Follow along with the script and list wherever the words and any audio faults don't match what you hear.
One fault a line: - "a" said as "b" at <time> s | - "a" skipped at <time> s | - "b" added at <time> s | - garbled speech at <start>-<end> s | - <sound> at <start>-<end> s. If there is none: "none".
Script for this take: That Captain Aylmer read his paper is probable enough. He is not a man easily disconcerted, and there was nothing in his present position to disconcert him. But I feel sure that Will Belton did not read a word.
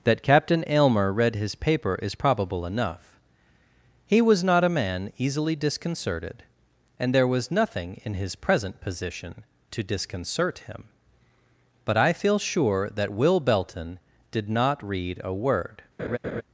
- "is" said as "was" at 4.2 s
- laugh at 16.0-16.4 s